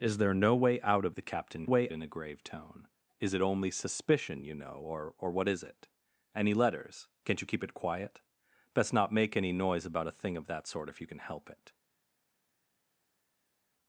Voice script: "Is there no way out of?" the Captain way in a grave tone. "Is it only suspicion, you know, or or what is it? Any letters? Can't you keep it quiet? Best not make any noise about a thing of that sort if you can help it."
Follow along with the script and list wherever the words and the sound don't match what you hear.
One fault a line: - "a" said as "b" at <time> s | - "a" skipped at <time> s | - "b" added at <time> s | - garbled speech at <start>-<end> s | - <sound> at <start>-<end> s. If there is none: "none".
none